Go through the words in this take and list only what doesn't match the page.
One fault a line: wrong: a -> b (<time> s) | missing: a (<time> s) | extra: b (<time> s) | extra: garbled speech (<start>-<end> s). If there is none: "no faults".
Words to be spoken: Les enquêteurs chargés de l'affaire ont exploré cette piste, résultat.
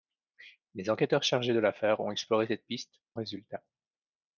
no faults